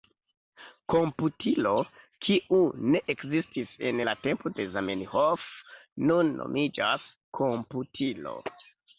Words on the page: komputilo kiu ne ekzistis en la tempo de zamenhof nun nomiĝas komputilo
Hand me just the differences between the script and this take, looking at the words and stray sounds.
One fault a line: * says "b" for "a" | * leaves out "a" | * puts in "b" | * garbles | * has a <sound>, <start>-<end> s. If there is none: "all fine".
all fine